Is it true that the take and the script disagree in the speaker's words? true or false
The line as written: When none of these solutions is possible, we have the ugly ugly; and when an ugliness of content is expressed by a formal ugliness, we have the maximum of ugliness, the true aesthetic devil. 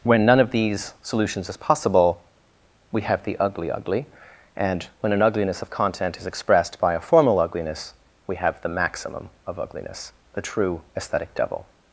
false